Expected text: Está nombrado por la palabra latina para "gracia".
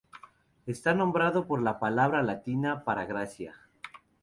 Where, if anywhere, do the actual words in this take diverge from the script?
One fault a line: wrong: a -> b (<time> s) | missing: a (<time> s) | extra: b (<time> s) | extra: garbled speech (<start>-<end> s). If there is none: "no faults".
no faults